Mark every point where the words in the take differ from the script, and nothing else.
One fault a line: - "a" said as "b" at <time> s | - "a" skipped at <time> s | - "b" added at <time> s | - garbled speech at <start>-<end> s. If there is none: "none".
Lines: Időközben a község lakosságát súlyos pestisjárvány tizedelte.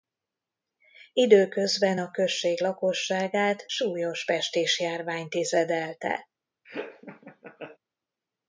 none